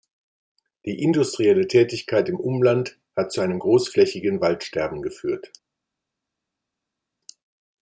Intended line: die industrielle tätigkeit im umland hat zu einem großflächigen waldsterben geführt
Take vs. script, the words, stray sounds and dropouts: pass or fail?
pass